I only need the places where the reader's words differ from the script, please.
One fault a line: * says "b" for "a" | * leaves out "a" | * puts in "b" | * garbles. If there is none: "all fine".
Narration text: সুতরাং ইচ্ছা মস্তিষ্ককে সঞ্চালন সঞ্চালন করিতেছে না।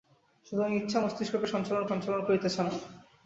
all fine